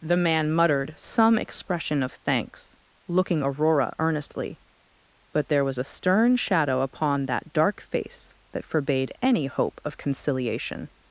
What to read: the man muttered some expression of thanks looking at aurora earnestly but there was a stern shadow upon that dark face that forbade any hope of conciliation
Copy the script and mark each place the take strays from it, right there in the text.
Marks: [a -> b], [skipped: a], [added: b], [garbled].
the man muttered some expression of thanks looking [skipped: at] aurora earnestly but there was a stern shadow upon that dark face that forbade any hope of conciliation